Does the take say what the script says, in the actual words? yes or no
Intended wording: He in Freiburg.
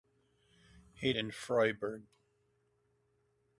yes